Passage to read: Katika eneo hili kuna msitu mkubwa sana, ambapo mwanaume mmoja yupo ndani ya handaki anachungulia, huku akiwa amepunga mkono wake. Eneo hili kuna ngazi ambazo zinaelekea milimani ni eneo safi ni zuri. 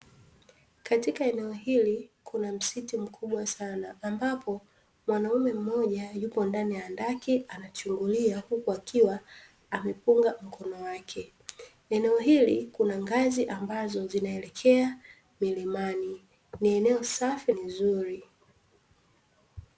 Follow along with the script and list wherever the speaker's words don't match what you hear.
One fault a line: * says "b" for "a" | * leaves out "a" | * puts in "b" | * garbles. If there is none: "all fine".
all fine